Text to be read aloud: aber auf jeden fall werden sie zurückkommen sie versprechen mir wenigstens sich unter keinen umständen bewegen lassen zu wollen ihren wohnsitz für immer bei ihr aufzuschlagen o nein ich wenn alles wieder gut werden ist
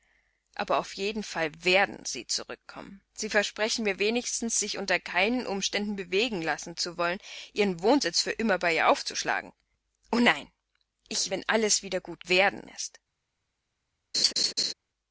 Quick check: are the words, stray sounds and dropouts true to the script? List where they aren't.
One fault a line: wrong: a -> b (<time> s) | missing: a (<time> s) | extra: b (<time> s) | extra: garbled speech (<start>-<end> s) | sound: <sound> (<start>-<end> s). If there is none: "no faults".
sound: laugh (14.1-14.7 s)